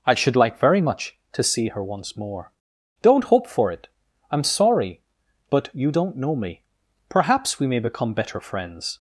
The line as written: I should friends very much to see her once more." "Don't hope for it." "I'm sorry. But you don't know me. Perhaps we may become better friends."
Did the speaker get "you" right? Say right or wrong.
right